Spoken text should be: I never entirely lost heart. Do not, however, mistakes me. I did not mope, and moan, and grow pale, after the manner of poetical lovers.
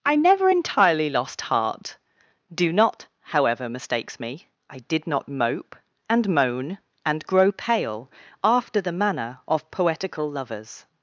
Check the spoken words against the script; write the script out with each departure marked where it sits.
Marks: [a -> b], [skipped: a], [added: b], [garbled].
I never entirely lost heart. Do not, however, mistakes me. I did not mope, and moan, and grow pale, after the manner of poetical lovers.